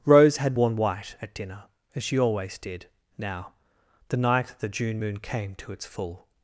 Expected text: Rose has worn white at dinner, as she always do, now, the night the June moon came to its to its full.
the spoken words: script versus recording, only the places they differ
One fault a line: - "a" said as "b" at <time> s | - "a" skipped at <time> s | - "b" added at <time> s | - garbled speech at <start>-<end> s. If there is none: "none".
- "has" said as "had" at 0.4 s
- "do" said as "did" at 2.6 s
- "to its" skipped at 5.8 s